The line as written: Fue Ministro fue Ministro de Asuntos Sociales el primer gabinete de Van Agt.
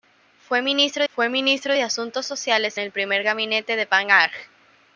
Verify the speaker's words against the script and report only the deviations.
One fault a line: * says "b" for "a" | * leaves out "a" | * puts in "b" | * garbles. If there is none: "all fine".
all fine